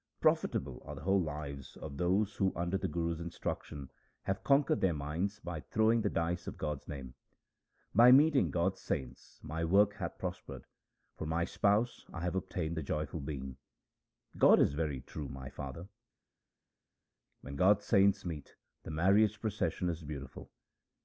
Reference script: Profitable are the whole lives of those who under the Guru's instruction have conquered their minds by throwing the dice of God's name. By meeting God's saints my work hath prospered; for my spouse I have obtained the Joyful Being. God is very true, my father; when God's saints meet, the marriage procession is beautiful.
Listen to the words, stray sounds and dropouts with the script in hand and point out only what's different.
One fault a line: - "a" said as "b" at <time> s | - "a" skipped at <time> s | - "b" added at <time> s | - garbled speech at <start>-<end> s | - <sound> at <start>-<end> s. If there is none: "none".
none